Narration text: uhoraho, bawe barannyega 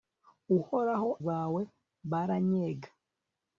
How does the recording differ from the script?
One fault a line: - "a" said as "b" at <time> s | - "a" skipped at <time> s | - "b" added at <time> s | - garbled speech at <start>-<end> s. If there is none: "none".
none